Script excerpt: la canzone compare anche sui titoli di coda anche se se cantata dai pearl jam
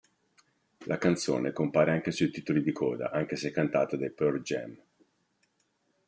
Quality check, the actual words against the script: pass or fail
fail